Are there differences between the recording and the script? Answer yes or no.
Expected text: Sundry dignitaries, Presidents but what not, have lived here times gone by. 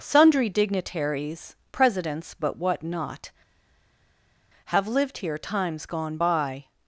no